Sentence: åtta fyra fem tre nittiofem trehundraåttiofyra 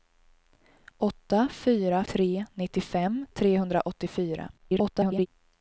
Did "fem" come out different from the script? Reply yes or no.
yes